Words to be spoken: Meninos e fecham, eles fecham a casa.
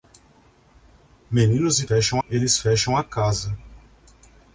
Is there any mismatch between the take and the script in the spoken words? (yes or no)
no